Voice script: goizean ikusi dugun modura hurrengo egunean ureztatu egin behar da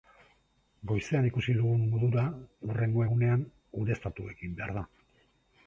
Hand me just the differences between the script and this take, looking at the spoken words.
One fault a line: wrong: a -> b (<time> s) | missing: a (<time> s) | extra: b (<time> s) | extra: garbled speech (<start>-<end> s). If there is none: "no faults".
no faults